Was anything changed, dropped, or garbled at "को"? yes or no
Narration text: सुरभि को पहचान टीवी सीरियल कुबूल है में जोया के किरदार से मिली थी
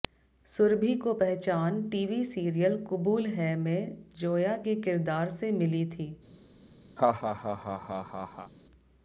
no